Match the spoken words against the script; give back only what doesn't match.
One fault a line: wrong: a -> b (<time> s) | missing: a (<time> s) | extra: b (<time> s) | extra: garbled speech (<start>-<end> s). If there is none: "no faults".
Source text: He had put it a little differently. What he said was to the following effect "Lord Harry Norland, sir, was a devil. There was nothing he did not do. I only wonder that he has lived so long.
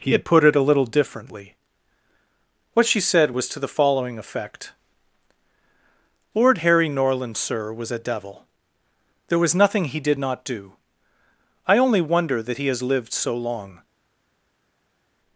wrong: he -> she (2.9 s)